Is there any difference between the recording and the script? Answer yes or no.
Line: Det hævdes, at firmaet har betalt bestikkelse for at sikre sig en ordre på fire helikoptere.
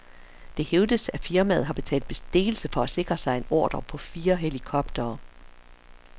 no